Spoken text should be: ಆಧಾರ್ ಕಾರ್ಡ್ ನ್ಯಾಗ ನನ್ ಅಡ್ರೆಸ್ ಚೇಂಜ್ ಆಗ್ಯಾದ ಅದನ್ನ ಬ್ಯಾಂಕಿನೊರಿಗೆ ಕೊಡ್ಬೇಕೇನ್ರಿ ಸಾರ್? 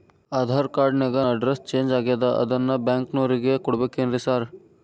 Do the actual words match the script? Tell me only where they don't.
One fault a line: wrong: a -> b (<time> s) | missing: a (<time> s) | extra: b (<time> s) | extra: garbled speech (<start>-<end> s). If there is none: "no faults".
missing: ನನ್ (1.2 s)